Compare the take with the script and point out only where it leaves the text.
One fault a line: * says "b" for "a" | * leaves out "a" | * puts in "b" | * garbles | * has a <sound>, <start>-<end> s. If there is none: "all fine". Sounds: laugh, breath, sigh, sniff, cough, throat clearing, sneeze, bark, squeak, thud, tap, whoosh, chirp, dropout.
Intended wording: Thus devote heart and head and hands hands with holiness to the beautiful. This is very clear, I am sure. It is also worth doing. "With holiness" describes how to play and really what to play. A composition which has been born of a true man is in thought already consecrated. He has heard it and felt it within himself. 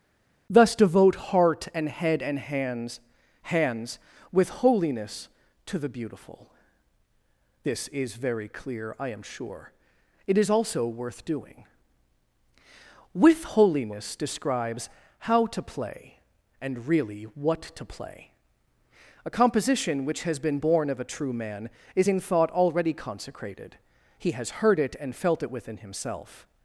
all fine